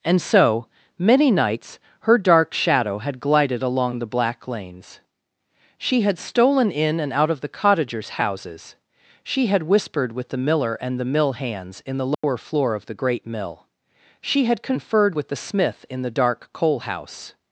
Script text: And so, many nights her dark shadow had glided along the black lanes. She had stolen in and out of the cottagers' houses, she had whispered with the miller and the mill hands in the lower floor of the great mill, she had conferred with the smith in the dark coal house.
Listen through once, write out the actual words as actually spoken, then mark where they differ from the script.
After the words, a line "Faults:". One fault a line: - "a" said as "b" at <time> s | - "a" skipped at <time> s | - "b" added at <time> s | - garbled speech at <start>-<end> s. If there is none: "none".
And so, many nights her dark shadow had glided along the black lanes. She had stolen in and out of the cottagers' houses, she had whispered with the miller and the mill hands in the lower floor of the great mill, she had conferred with the smith in the dark coal house.
Faults:
none